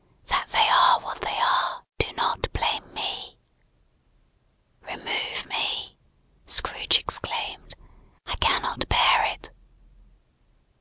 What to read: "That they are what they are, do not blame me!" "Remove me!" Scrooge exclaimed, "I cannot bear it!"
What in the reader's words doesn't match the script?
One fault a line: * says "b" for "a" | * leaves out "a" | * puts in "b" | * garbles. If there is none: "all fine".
all fine